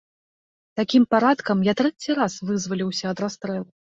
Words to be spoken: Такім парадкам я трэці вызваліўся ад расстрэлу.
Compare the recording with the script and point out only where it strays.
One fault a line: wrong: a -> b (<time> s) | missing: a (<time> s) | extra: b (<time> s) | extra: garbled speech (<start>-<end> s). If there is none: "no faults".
extra: раз (2.2 s)